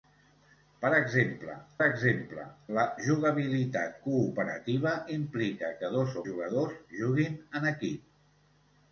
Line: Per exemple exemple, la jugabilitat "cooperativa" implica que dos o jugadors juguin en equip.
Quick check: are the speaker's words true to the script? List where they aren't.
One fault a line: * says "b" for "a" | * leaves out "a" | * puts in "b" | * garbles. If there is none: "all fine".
all fine